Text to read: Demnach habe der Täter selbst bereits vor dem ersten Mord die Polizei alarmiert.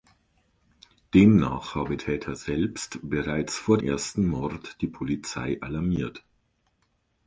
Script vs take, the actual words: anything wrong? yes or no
yes